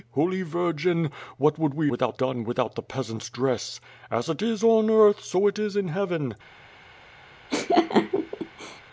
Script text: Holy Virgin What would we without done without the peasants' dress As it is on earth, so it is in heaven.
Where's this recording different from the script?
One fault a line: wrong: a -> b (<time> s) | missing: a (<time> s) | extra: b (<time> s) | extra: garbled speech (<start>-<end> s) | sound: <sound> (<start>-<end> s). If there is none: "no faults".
sound: laugh (7.5-8.8 s)